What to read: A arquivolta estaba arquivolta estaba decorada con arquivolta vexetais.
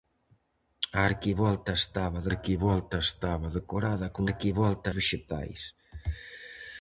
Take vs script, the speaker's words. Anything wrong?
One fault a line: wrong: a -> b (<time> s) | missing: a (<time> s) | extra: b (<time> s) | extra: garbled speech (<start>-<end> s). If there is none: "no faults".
no faults